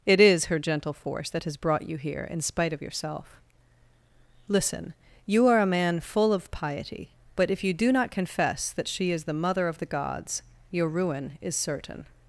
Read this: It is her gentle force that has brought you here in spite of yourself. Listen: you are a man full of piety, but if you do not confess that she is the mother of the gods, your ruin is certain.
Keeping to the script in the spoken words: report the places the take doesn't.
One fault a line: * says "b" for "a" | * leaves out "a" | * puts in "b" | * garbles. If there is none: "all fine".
all fine